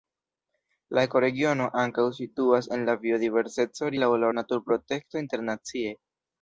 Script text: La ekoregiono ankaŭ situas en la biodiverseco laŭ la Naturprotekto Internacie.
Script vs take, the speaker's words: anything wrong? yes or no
no